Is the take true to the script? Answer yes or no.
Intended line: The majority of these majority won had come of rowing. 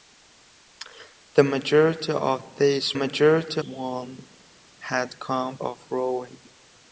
yes